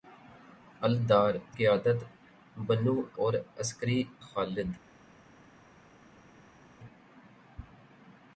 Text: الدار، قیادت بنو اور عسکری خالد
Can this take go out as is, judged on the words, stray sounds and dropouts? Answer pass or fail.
pass